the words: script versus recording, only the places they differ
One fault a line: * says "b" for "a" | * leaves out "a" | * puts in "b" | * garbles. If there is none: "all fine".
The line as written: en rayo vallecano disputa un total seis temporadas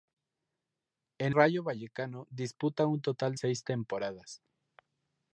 all fine